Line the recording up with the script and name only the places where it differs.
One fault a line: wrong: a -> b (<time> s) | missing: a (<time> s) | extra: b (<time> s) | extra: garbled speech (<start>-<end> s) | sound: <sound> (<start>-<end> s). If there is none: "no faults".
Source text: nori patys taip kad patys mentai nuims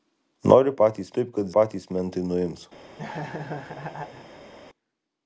sound: laugh (3.0-4.5 s)